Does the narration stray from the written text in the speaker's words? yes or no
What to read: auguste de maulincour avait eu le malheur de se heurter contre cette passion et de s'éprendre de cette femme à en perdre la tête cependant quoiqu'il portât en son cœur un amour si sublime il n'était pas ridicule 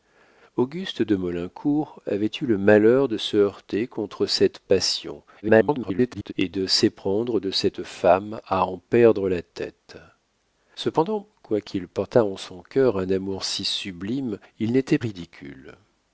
yes